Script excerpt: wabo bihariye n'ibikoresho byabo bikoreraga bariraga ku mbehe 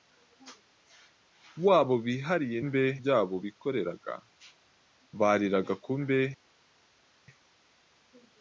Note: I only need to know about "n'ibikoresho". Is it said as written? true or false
false